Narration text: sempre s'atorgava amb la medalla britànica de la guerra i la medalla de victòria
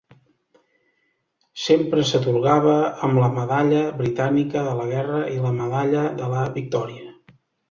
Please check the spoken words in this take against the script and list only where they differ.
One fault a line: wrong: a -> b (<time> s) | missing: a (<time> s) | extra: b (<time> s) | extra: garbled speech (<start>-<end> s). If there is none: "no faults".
extra: la (6.4 s)